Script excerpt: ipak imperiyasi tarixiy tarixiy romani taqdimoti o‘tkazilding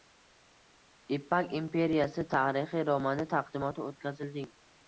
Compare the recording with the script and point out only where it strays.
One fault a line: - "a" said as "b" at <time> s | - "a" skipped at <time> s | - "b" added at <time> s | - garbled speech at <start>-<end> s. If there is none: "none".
- "tarixiy" skipped at 2.9 s